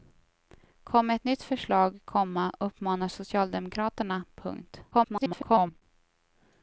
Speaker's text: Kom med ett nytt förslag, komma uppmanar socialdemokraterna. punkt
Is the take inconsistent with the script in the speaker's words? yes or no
yes